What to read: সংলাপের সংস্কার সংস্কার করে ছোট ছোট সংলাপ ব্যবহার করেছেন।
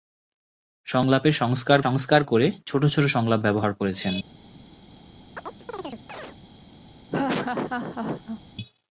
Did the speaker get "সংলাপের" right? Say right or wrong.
right